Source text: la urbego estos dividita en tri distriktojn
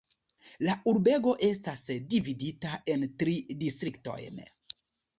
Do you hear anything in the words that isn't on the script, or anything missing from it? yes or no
yes